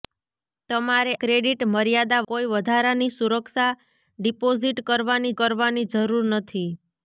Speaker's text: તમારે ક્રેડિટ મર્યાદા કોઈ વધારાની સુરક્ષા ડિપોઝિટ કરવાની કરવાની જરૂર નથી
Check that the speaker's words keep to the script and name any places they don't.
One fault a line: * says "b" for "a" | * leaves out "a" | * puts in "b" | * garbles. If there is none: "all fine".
all fine